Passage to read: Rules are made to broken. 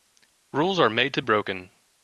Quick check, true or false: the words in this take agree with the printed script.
true